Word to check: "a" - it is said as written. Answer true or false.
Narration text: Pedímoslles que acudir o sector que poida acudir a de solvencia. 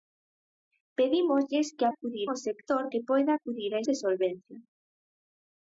true